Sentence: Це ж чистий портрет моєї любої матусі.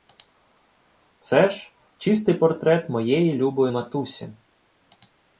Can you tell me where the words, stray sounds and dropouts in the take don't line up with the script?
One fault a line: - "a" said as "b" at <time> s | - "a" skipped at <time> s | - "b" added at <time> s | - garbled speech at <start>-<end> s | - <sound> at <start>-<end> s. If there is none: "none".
none